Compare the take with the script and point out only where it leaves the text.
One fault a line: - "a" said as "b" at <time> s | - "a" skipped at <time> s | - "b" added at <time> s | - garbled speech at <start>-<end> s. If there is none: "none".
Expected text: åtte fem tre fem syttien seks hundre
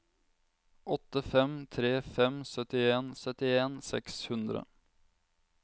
- "syttien" added at 3.2 s